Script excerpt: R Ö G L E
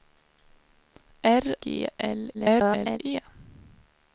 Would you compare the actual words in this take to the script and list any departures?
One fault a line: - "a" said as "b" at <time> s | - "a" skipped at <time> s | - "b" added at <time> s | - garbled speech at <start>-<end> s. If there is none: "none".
- "Ö" skipped at 1.4 s
- garbled speech at 2.3-3.0 s